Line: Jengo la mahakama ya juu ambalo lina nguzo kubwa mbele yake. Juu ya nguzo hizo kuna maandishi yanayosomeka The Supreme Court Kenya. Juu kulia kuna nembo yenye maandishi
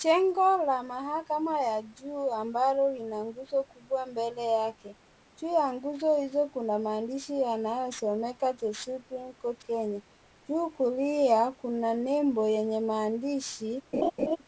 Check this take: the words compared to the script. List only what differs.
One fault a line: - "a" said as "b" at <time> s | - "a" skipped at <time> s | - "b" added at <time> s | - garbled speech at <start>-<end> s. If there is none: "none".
none